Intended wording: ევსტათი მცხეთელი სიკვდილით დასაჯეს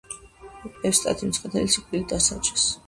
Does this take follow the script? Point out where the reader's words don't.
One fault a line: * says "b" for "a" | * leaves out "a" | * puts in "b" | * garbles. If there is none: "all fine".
all fine